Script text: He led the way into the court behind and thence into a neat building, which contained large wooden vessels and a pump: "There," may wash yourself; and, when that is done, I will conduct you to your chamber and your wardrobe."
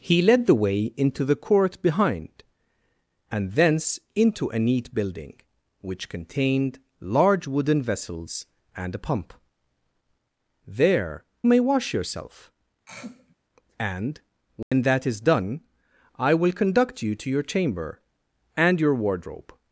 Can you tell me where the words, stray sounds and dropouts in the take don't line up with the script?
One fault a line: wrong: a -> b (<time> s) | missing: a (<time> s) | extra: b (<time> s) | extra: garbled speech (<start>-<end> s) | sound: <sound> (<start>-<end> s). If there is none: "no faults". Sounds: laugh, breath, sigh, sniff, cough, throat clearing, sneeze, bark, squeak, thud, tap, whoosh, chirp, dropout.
sound: throat clearing (12.9-13.4 s)
sound: dropout (14.6-14.7 s)